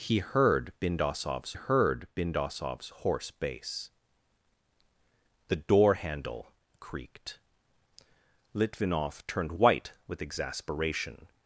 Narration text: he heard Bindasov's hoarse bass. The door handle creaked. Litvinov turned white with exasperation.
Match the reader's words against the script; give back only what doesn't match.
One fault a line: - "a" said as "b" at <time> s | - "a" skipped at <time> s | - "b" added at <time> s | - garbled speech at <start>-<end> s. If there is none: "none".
- "heard Bindasov's" added at 1.5 s